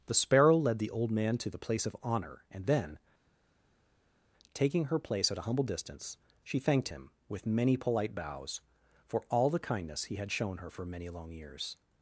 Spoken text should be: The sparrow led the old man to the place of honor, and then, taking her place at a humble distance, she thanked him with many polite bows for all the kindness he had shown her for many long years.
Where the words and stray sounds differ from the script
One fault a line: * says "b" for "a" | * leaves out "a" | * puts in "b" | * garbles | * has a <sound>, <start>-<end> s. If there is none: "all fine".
all fine